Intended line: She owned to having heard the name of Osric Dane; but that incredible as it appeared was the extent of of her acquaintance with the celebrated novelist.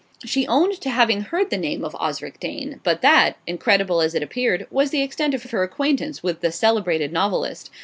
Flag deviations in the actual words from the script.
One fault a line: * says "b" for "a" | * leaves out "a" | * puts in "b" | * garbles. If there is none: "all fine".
all fine